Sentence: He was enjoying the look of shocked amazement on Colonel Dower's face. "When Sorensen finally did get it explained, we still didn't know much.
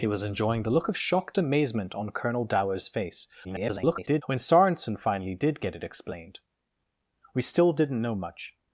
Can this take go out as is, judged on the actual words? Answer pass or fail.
fail